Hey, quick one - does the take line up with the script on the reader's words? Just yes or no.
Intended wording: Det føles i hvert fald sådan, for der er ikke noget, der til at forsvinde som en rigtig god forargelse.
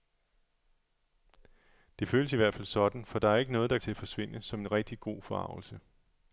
yes